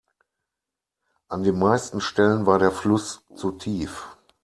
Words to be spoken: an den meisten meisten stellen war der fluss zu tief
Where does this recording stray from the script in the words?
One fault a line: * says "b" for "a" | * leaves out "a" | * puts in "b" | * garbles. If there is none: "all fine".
* leaves out "meisten"